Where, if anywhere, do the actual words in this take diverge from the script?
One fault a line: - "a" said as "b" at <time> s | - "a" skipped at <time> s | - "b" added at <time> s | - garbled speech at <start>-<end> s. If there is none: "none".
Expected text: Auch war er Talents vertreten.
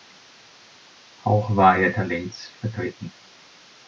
none